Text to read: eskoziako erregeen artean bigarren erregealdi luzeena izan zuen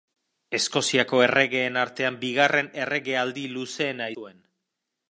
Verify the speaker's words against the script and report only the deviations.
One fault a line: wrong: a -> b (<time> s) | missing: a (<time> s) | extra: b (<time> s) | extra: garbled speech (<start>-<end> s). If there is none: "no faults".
missing: izan (4.1 s)